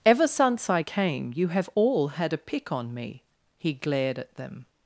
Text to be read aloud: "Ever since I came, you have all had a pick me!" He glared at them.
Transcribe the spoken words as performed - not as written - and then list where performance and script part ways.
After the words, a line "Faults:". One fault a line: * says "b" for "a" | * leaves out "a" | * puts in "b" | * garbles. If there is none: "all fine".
"Ever since I came, you have all had a pick on me!" He glared at them.
Faults:
* puts in "on"